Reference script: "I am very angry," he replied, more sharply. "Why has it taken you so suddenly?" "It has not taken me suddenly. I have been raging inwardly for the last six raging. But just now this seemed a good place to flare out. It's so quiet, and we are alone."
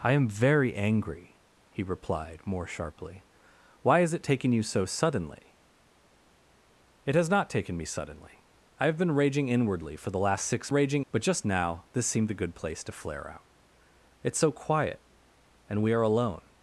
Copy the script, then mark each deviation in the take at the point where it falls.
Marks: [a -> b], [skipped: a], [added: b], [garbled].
"I am very angry," he replied, more sharply. "Why has it taken you so suddenly?" "It has not taken me suddenly. I have been raging inwardly for the last six raging. But just now this seemed a good place to flare out. It's so quiet, and we are alone."